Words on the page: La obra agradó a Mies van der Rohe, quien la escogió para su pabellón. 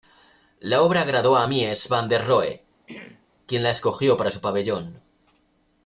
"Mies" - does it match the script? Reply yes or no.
yes